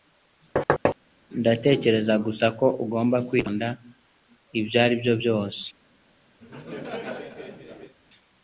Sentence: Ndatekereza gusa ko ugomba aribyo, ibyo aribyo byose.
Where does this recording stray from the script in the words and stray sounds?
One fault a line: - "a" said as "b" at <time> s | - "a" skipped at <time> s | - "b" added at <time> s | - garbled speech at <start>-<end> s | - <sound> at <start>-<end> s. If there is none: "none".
- thud at 0.6-1.0 s
- "aribyo" said as "kwitonda" at 3.3 s
- laugh at 6.4-7.9 s